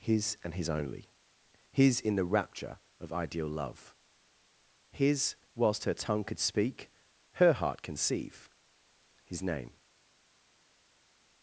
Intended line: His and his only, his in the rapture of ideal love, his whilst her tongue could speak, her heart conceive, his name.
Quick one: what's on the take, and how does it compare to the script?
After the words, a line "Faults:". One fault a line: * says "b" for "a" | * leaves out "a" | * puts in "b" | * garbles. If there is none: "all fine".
His and his only, his in the rapture of ideal love, his whilst her tongue could speak, her heart conceive, his name.
Faults:
all fine